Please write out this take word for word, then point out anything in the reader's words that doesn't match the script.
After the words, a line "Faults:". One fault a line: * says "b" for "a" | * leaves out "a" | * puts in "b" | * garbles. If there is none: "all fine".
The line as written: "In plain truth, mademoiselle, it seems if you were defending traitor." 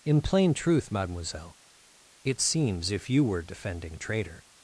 "In plain truth, mademoiselle, it seems if you were defending traitor."
Faults:
all fine